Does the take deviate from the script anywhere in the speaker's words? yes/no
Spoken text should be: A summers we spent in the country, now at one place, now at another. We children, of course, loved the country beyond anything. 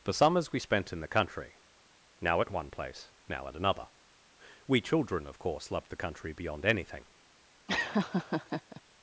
yes